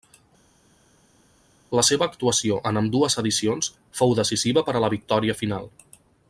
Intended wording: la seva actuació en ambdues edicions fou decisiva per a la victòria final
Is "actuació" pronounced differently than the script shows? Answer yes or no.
no